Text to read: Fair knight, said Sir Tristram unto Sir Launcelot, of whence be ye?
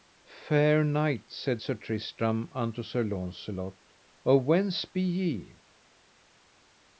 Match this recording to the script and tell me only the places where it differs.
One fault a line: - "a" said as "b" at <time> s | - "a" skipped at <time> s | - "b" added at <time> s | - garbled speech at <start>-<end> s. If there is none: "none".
none